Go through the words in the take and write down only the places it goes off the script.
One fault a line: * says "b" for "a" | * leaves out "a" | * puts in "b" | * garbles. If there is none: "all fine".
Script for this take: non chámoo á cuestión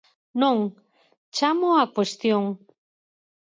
all fine